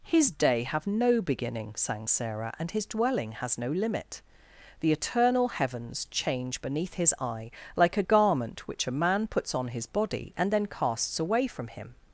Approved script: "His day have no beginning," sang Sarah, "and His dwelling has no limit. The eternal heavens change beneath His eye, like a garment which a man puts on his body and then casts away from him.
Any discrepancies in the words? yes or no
no